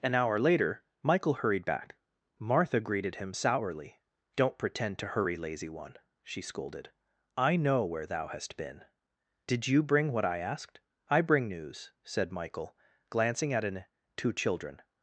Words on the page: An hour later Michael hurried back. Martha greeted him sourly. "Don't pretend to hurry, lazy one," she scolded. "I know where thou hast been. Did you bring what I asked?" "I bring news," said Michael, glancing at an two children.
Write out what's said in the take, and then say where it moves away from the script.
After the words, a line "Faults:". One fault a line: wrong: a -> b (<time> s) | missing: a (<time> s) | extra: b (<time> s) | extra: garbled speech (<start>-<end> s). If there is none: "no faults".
An hour later Michael hurried back. Martha greeted him sourly. "Don't pretend to hurry, lazy one," she scolded. "I know where thou hast been. Did you bring what I asked?" "I bring news," said Michael, glancing at an two children.
Faults:
no faults